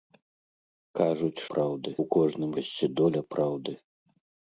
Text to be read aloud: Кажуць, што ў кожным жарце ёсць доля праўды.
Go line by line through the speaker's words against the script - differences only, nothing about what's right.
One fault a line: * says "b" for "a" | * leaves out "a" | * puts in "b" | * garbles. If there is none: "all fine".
* says "праўды" for "што"
* leaves out "жарце"